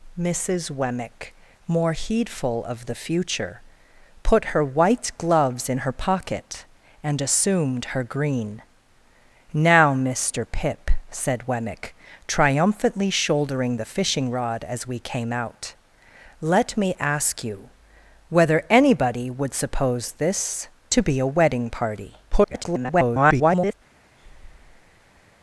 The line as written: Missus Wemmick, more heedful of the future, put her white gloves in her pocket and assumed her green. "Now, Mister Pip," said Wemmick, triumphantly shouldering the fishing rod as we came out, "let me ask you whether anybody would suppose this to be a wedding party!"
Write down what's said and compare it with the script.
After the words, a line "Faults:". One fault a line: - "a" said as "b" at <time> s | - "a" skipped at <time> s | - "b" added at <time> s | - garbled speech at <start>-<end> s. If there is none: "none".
Missus Wemmick, more heedful of the future, put her white gloves in her pocket and assumed her green. "Now, Mister Pip," said Wemmick, triumphantly shouldering the fishing rod as we came out, "let me ask you whether anybody would suppose this to be a wedding party!" [garbled]
Faults:
- garbled speech at 22.3-23.7 s